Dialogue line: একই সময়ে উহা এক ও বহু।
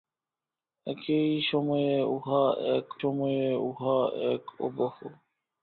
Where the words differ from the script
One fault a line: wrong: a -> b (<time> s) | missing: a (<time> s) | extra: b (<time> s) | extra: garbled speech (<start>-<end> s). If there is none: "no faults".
extra: সময়ে উহা এক (3.0 s)